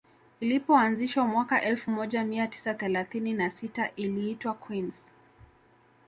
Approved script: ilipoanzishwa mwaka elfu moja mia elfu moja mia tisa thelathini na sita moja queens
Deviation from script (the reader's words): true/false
true